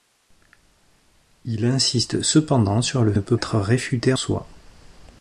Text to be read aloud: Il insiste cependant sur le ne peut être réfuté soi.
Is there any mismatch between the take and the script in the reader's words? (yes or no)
no